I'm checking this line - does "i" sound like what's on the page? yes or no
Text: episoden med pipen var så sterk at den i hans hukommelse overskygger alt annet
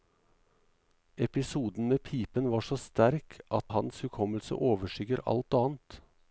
no